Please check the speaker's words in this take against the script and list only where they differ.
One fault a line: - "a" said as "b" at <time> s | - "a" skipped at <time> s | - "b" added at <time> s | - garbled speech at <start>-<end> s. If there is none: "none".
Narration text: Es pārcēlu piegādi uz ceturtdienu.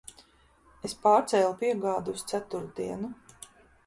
none